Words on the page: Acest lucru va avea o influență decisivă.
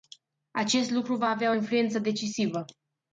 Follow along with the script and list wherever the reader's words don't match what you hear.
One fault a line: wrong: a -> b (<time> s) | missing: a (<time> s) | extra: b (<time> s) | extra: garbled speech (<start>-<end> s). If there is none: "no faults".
no faults